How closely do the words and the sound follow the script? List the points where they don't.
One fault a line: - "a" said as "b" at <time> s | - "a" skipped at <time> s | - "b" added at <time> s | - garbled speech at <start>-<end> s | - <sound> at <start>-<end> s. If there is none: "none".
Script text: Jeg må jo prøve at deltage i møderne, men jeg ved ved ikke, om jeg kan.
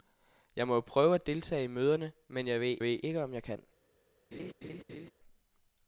- laugh at 4.3-5.1 s